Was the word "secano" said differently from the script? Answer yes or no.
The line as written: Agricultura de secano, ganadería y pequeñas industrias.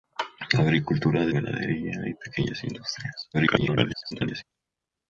yes